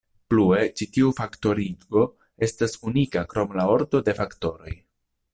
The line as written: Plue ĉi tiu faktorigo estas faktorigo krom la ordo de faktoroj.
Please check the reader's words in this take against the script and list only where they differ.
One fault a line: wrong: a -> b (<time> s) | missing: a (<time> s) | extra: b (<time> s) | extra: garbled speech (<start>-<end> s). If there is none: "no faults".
wrong: faktorigo -> unika (2.9 s)